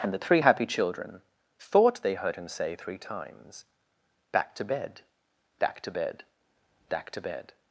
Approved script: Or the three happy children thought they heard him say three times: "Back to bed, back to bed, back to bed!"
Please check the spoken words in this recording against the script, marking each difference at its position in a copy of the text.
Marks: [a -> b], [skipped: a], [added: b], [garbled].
[Or -> And] the three happy children thought they heard him say three times: "Back to bed, back to bed, back to bed!"